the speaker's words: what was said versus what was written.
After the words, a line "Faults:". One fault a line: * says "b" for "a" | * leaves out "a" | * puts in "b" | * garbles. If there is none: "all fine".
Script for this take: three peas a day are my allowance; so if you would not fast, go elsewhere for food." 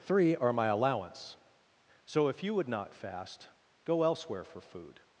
three are my allowance; so if you would not fast, go elsewhere for food."
Faults:
* leaves out "peas a day"